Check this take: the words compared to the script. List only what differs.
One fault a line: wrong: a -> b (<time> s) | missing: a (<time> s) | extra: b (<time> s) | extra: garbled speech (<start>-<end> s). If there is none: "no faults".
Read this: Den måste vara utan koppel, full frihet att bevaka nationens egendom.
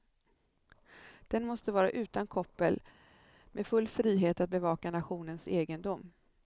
extra: med (3.5 s)